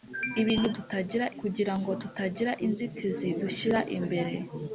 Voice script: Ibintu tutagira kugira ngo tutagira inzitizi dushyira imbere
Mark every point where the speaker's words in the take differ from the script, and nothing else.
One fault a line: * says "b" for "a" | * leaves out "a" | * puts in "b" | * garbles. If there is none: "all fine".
all fine